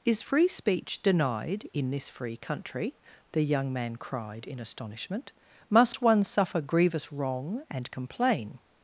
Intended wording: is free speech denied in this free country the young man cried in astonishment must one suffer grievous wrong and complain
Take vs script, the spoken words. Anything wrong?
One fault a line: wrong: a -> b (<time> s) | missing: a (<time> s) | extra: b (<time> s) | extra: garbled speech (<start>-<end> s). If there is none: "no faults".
no faults